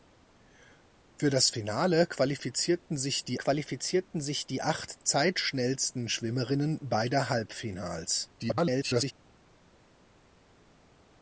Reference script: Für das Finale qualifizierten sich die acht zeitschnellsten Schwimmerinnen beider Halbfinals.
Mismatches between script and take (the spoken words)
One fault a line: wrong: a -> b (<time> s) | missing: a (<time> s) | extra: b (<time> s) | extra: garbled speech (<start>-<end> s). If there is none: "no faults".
extra: qualifizierten sich die (3.4 s)
extra: garbled speech (8.4-9.1 s)